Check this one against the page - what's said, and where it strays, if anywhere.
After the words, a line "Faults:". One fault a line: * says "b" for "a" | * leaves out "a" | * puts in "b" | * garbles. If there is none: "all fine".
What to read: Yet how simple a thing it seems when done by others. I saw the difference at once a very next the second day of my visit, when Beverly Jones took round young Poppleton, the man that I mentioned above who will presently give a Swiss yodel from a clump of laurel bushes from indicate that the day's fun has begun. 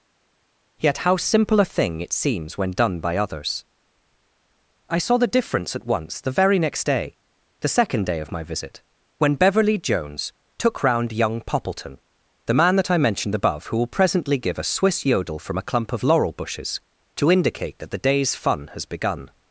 Yet how simple a thing it seems when done by others. I saw the difference at once the very next day, the second day of my visit, when Beverly Jones took round young Poppleton, the man that I mentioned above who will presently give a Swiss yodel from a clump of laurel bushes to indicate that the day's fun has begun.
Faults:
* says "the" for "a"
* puts in "day"
* says "to" for "from"